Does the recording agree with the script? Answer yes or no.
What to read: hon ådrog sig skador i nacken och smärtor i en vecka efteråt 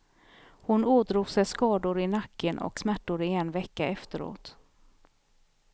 yes